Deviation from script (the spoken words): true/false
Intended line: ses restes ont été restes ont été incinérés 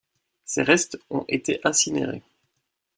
true